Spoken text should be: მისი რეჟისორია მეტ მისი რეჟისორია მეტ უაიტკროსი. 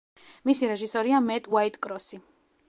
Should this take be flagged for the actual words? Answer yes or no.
yes